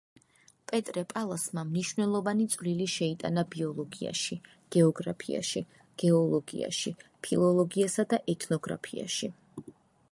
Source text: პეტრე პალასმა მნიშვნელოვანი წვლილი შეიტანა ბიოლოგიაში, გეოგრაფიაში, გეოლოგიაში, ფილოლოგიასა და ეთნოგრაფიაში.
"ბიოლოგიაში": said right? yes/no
yes